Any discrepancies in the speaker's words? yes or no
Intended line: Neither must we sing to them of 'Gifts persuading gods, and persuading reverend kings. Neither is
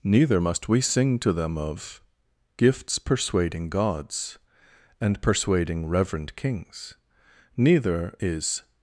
no